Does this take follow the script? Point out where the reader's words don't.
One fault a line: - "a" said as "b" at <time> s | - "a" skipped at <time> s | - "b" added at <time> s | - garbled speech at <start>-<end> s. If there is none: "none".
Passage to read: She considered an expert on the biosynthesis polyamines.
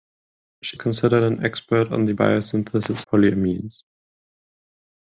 none